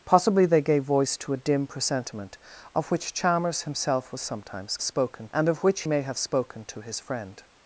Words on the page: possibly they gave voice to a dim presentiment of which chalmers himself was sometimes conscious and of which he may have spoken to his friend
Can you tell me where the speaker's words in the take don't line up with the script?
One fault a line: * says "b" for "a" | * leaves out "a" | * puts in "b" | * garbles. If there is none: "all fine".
* says "spoken" for "conscious"
* leaves out "he"